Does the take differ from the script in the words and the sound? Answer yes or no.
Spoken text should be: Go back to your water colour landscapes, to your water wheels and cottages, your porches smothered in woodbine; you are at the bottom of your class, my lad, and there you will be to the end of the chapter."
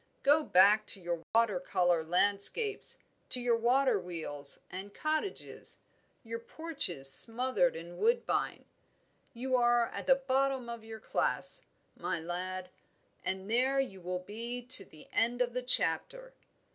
yes